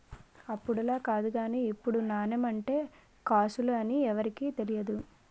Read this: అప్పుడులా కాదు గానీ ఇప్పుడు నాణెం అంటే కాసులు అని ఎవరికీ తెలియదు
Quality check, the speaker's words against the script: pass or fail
pass